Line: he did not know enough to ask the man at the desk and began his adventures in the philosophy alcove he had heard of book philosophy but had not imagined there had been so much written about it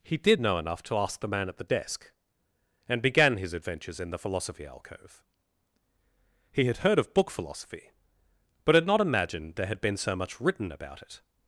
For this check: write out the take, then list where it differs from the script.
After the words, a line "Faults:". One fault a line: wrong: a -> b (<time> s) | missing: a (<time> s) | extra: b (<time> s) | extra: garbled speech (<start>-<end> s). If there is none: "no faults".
he did know enough to ask the man at the desk and began his adventures in the philosophy alcove he had heard of book philosophy but had not imagined there had been so much written about it
Faults:
missing: not (0.4 s)